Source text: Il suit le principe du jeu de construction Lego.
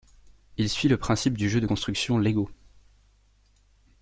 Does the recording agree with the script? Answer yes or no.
yes